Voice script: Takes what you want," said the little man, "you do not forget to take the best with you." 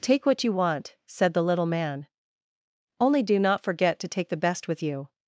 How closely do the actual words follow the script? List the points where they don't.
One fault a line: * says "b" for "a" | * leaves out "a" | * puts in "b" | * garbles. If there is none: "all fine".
* says "Take" for "Takes"
* says "only" for "you"